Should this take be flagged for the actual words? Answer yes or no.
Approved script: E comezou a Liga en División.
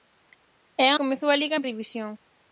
no